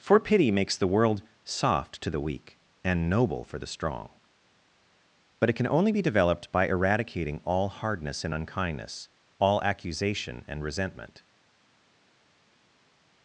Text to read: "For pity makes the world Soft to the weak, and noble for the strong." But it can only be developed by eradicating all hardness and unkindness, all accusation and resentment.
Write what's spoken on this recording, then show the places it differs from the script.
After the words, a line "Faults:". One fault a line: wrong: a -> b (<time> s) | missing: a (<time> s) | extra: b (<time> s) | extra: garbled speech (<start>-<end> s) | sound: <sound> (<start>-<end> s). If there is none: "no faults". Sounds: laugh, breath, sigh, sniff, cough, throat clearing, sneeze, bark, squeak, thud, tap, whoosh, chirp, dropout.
"For pity makes the world Soft to the weak, and noble for the strong." But it can only be developed by eradicating all hardness and unkindness, all accusation and resentment.
Faults:
no faults